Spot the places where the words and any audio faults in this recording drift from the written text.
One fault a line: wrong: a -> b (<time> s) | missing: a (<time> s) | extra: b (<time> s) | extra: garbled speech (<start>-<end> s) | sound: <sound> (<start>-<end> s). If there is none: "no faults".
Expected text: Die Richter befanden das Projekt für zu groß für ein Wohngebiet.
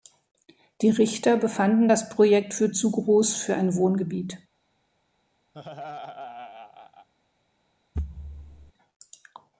sound: laugh (5.5-7.1 s)
sound: thud (7.9-8.7 s)